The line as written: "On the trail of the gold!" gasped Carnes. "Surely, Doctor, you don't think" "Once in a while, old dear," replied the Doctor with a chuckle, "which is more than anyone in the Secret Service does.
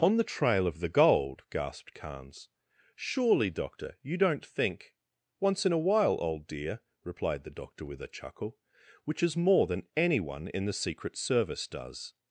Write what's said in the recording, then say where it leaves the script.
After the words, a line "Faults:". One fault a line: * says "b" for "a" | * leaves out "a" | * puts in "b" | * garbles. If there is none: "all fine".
"On the trail of the gold!" gasped Carnes. "Surely, Doctor, you don't think" "Once in a while, old dear," replied the Doctor with a chuckle, "which is more than anyone in the Secret Service does.
Faults:
all fine